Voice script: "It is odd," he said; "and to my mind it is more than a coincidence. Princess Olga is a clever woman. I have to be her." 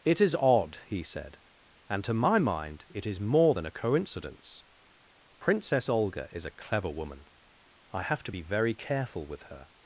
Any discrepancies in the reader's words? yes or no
yes